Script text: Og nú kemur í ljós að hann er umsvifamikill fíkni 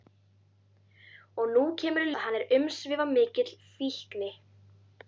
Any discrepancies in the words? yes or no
yes